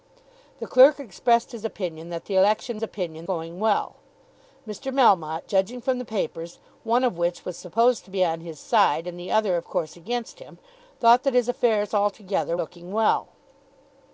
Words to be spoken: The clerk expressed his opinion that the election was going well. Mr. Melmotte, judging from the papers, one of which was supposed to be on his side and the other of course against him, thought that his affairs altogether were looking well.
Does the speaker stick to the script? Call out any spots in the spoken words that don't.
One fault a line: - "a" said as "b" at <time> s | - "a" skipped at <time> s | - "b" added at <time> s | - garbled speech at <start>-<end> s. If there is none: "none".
- "was" said as "opinion" at 2.8 s
- "were" skipped at 12.6 s